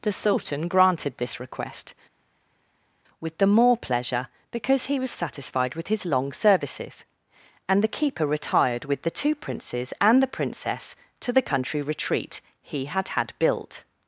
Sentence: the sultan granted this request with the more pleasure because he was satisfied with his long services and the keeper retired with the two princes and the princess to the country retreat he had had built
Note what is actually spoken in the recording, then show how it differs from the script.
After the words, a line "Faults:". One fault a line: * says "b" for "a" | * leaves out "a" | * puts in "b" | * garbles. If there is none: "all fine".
the sultan granted this request with the more pleasure because he was satisfied with his long services and the keeper retired with the two princes and the princess to the country retreat he had had built
Faults:
all fine